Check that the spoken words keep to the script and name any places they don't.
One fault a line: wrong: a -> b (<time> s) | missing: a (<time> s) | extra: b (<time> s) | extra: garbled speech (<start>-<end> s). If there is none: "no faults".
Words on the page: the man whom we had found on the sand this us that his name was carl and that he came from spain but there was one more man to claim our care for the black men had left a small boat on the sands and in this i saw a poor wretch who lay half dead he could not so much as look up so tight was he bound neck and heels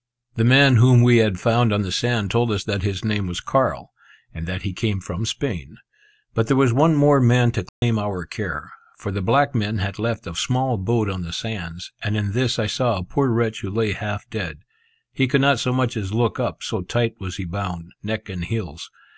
wrong: this -> told (2.3 s)